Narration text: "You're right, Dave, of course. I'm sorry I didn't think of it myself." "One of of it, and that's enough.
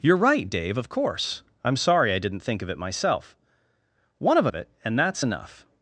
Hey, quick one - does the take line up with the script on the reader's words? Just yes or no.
yes